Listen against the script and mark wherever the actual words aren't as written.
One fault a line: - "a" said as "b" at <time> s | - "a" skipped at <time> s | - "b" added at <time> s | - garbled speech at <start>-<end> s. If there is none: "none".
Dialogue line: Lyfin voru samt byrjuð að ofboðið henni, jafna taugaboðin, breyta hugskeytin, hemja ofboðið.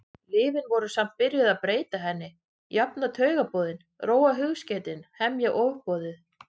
- "ofboðið" said as "breyta" at 1.6 s
- "breyta" said as "róa" at 4.1 s